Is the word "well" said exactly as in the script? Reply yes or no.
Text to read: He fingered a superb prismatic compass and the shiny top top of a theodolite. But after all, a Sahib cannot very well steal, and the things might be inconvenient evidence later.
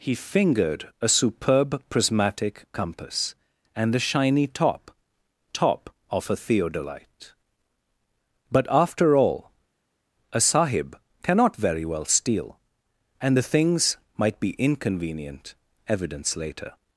yes